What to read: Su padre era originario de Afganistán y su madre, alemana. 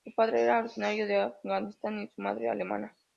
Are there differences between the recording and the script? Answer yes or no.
no